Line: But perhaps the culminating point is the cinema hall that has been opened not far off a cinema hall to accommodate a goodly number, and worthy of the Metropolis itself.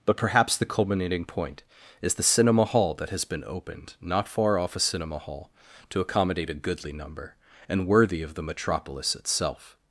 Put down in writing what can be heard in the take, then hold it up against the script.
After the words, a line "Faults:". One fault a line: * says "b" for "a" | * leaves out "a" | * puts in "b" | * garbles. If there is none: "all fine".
But perhaps the culminating point is the cinema hall that has been opened not far off a cinema hall to accommodate a goodly number, and worthy of the Metropolis itself.
Faults:
all fine